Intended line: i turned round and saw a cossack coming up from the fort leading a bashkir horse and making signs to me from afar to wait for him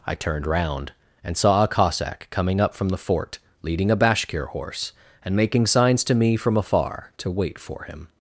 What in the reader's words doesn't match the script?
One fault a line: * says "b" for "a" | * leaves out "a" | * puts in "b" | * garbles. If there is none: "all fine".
all fine